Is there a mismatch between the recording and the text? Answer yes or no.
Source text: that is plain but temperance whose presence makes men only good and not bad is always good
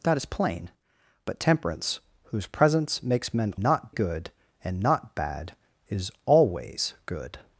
yes